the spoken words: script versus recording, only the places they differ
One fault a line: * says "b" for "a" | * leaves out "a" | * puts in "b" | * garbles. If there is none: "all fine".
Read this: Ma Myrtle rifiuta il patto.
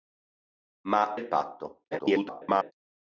* leaves out "Myrtle rifiuta"
* garbles